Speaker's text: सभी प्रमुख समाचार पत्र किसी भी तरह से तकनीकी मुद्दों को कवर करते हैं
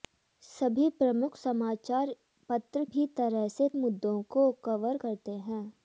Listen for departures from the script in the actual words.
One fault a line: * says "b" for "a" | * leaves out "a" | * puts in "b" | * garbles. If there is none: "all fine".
* leaves out "किसी"
* leaves out "तकनीकी"